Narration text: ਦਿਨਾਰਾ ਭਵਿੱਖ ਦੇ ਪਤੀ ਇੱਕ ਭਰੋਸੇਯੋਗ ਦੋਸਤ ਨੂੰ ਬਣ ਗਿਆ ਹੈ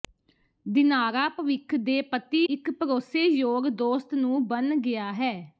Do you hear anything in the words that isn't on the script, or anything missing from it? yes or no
no